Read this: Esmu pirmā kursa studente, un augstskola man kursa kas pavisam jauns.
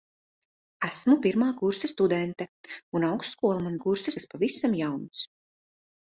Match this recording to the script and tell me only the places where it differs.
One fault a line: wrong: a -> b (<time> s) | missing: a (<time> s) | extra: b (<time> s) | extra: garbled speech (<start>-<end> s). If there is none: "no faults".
no faults